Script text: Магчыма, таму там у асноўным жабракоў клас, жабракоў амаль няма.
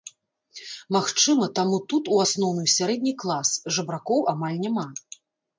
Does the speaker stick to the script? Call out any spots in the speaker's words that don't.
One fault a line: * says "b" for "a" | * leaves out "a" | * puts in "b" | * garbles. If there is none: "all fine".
* says "тут" for "там"
* says "сярэдні" for "жабракоў"